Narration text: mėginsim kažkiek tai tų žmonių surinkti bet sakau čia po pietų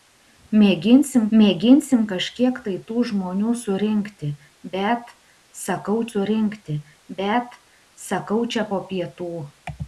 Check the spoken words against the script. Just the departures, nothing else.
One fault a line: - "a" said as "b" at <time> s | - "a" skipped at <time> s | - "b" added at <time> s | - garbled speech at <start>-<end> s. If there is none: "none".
- "mėginsim" added at 1.4 s
- "surinkti bet sakau" added at 6.1 s